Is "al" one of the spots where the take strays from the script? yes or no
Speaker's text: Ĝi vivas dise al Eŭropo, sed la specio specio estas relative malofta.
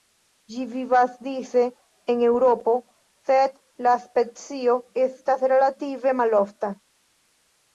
yes